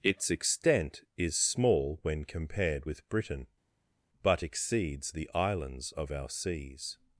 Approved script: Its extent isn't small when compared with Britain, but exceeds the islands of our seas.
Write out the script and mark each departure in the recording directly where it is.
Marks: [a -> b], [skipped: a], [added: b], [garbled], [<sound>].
Its extent [isn't -> is] small when compared with Britain, but exceeds the islands of our seas.